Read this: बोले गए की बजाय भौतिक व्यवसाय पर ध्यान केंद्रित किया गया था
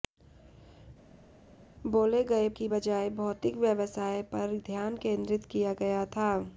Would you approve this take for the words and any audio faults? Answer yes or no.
yes